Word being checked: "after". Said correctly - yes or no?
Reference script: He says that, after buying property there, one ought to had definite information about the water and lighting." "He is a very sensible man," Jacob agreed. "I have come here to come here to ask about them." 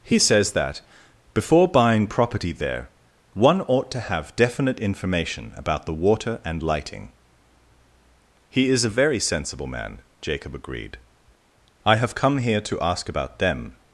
no